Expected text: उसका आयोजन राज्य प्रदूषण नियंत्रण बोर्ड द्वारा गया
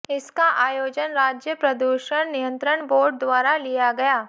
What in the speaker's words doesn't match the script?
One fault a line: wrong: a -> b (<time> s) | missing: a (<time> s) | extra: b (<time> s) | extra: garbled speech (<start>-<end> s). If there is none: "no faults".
wrong: उसका -> इसका (0.1 s)
extra: लिया (3.6 s)